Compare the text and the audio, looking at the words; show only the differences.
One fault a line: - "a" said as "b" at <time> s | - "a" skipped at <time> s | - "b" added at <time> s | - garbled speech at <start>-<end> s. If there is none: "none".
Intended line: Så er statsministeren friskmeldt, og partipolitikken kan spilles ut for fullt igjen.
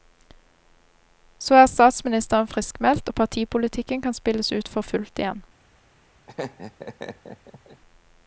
none